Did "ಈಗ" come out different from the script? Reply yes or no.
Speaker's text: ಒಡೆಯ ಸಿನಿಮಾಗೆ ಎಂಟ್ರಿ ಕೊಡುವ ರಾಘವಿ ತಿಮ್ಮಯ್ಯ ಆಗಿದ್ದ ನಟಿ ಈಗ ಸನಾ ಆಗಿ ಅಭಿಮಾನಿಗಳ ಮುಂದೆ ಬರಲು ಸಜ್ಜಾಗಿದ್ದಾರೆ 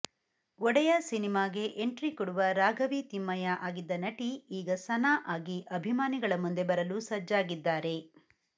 no